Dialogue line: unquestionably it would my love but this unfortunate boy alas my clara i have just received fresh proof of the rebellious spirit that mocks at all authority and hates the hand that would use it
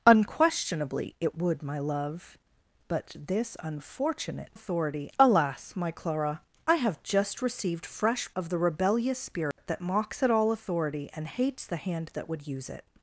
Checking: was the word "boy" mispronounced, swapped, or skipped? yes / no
yes